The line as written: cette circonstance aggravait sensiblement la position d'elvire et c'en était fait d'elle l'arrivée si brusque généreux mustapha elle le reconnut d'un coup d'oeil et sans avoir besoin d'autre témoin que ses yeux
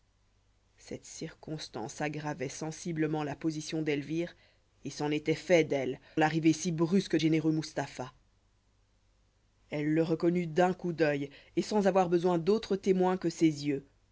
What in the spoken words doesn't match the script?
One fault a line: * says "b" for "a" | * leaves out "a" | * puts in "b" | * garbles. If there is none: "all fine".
all fine